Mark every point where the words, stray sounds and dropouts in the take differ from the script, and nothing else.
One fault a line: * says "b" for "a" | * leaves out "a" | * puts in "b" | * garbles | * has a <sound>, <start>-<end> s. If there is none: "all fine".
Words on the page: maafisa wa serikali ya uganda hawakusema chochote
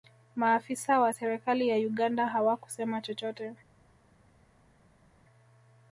all fine